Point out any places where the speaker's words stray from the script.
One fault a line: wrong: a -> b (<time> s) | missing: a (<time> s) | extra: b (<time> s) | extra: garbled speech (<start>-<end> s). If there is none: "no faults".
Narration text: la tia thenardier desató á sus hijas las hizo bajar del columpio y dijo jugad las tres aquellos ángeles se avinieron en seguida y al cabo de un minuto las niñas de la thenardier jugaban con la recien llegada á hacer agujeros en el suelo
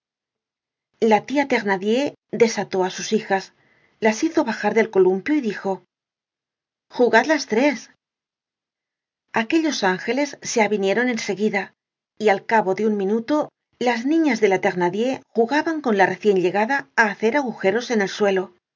no faults